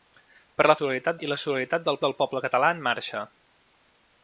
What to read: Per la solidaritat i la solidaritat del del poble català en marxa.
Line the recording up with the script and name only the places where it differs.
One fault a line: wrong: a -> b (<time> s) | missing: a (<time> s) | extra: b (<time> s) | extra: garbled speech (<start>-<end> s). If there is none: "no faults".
no faults